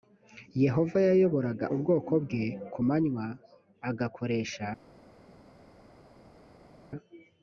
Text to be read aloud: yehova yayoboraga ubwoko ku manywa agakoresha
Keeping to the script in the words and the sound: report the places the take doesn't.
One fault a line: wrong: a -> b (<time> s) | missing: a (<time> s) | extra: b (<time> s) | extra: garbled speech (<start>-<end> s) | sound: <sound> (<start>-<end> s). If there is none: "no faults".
extra: bwe (2.2 s)